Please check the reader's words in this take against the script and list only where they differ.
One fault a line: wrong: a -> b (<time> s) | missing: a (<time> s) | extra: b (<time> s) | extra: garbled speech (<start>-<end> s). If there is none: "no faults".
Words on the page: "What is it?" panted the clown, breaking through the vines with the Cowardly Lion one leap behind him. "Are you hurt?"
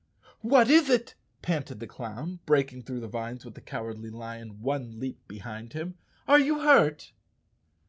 no faults